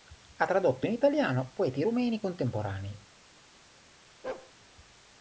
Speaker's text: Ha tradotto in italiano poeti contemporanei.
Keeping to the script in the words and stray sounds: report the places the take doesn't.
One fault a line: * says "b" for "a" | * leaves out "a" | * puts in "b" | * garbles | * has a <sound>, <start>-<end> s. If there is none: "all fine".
* puts in "rumeni"
* has a bark, 4.2-4.5 s